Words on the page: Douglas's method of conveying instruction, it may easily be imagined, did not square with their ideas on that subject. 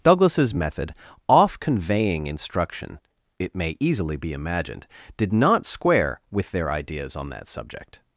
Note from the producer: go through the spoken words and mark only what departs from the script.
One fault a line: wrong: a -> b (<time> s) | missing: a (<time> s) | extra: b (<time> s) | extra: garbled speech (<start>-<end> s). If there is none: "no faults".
wrong: of -> off (1.3 s)